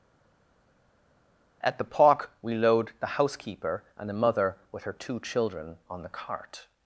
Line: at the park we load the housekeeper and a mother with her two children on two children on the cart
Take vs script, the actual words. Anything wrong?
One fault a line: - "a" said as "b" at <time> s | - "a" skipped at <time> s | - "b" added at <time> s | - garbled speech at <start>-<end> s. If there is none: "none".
- "two children on" skipped at 6.0 s